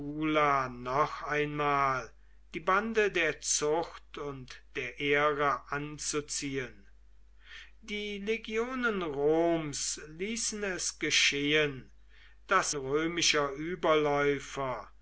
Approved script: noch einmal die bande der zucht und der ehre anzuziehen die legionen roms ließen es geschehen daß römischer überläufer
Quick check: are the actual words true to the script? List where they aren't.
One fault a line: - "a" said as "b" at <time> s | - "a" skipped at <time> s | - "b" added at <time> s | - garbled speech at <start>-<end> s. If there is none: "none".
none